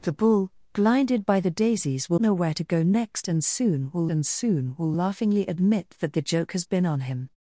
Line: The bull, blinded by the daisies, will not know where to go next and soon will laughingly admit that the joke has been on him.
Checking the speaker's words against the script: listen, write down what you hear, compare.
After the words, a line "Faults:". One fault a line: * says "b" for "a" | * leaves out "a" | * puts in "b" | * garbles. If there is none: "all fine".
The bull, blinded by the daisies, will know where to go next and soon will and soon will laughingly admit that the joke has been on him.
Faults:
* leaves out "not"
* puts in "and soon will"